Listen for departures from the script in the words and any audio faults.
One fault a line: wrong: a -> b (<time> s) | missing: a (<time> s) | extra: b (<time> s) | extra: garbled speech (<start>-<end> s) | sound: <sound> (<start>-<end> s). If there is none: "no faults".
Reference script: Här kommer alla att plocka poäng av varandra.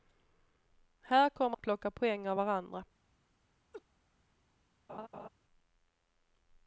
missing: alla (1.6 s)
sound: laugh (3.7-3.8 s)
sound: laugh (4.9-5.3 s)